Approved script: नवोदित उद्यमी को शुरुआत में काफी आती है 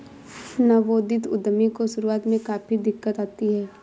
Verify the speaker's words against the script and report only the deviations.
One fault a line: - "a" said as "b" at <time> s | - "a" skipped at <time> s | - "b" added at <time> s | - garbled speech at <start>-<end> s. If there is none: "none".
- "दिक्कत" added at 2.8 s